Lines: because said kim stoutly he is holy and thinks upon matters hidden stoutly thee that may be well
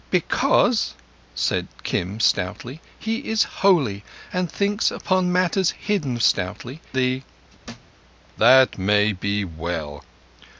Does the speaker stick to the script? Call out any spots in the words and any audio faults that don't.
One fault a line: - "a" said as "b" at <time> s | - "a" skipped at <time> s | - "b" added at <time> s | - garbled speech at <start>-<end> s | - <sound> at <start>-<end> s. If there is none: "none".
- thud at 7.6-8.0 s